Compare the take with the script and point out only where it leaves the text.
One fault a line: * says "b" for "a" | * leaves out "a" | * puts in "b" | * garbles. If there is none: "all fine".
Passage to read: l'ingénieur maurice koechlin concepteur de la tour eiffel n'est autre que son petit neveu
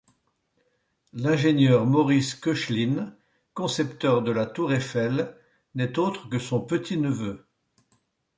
all fine